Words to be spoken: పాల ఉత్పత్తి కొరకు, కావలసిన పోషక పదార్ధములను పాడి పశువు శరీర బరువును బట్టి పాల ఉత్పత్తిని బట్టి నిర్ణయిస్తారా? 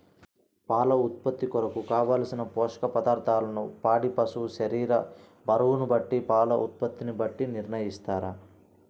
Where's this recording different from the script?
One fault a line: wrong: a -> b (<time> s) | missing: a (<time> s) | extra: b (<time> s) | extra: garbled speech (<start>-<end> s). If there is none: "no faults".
no faults